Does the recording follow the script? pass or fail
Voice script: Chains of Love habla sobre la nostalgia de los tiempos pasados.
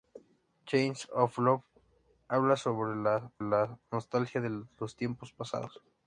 fail